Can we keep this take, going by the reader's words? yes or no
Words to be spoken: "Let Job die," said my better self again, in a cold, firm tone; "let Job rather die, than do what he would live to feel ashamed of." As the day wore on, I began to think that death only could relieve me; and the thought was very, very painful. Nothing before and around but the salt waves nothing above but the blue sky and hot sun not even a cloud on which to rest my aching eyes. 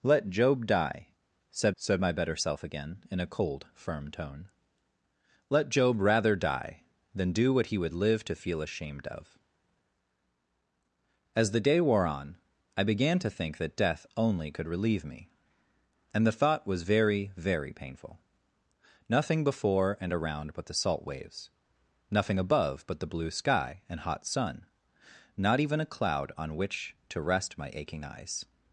no